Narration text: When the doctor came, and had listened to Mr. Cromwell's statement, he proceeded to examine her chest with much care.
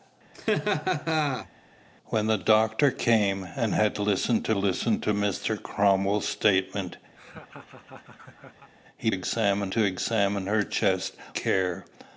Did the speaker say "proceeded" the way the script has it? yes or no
no